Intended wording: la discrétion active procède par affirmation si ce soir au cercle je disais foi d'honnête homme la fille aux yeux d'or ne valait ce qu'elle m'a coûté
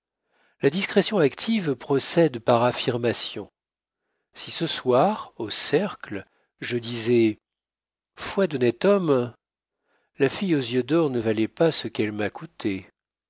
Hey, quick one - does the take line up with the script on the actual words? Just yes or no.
no